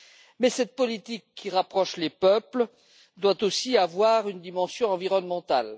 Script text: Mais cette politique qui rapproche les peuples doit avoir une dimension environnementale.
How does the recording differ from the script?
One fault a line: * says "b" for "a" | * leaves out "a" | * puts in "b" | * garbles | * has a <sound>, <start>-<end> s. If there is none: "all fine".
* puts in "aussi"